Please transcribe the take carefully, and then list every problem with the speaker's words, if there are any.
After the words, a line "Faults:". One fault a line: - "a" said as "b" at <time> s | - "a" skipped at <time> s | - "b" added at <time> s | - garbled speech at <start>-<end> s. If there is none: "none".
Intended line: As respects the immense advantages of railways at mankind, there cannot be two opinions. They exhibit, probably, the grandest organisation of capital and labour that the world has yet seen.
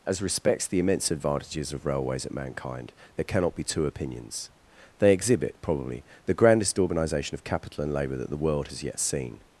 As respects the immense advantages of railways at mankind, there cannot be two opinions. They exhibit, probably, the grandest organisation of capital and labour that the world has yet seen.
Faults:
none